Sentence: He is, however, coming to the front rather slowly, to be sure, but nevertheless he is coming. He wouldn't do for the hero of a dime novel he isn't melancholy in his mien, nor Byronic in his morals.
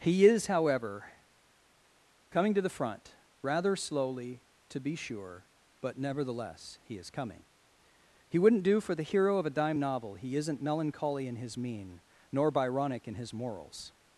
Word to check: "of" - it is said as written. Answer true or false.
true